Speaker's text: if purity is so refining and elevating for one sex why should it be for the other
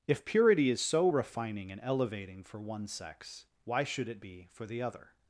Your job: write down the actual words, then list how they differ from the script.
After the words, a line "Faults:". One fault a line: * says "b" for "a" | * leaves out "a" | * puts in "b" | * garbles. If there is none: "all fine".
if purity is so refining and elevating for one sex why should it be for the other
Faults:
all fine